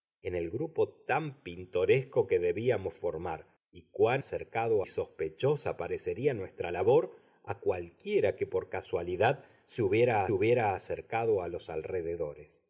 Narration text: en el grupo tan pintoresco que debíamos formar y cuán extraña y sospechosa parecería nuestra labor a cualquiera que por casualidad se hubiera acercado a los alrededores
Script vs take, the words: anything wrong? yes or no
yes